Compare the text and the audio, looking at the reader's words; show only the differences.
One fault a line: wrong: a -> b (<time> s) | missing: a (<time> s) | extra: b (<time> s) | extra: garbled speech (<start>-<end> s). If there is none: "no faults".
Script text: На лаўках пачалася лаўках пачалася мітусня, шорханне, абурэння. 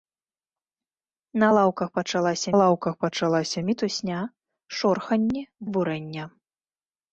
no faults